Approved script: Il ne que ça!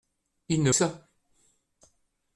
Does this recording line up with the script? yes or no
yes